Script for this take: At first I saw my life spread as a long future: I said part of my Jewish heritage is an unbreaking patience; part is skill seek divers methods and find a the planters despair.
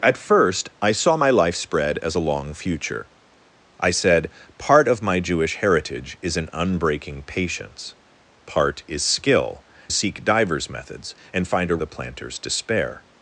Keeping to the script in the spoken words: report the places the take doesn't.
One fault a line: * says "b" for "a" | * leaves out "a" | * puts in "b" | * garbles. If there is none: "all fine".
all fine